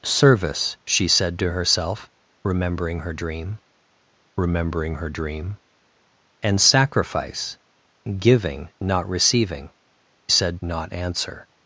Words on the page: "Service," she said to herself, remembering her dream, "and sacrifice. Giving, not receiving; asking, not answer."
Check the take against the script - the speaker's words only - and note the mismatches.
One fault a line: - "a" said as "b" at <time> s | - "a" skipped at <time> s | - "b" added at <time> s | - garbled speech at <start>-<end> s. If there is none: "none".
- "remembering her dream" added at 4.4 s
- "asking" said as "said" at 10.3 s